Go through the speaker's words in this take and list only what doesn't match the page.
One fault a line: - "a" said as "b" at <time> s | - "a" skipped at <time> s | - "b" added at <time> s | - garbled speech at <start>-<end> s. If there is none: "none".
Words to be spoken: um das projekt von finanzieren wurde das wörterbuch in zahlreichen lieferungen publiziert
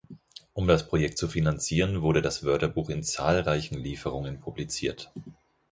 - "von" said as "zu" at 1.2 s